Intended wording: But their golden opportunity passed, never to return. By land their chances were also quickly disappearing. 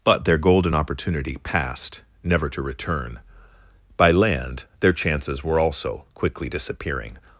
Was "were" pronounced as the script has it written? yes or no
yes